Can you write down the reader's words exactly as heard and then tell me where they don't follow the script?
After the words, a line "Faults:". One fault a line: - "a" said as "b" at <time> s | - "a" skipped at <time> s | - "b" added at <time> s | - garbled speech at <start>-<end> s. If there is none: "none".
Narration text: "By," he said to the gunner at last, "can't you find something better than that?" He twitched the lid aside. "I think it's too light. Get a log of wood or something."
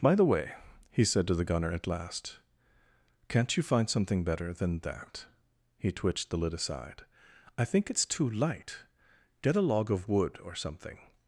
"By the way," he said to the gunner at last, "can't you find something better than that?" He twitched the lid aside. "I think it's too light. Get a log of wood or something."
Faults:
- "the way" added at 0.1 s